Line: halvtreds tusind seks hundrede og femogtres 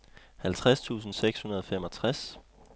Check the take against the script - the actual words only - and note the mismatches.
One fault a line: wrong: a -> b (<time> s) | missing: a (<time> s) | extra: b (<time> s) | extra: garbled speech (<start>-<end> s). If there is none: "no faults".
no faults